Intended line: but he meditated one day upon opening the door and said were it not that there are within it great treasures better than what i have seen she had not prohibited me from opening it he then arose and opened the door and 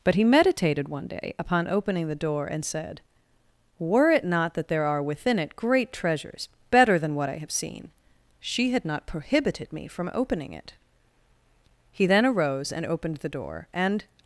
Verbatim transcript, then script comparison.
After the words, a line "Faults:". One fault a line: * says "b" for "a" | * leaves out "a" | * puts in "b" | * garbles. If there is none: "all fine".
but he meditated one day upon opening the door and said were it not that there are within it great treasures better than what i have seen she had not prohibited me from opening it he then arose and opened the door and
Faults:
all fine